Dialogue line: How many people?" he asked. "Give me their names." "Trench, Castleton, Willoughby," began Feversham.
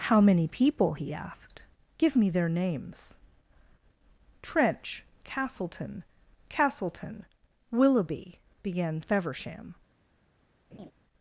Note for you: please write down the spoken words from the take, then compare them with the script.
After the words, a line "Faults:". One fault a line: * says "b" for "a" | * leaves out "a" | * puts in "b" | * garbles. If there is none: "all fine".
How many people?" he asked. "Give me their names." "Trench, Castleton Castleton, Willoughby," began Feversham.
Faults:
* puts in "Castleton"